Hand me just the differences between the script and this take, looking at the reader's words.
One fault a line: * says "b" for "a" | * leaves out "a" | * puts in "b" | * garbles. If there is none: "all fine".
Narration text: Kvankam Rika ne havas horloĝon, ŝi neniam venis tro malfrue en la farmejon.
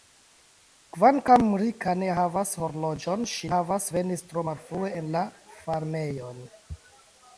* says "havas" for "neniam"